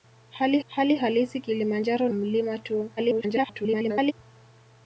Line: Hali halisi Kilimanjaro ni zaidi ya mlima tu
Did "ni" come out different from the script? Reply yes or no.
yes